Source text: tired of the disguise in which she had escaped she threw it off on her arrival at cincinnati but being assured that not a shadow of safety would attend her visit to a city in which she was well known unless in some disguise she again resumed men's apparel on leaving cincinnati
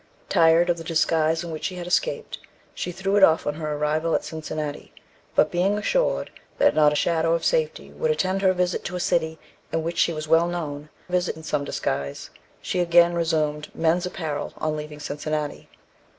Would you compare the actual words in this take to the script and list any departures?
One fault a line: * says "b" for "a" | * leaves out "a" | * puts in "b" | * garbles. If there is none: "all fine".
* says "visit" for "unless"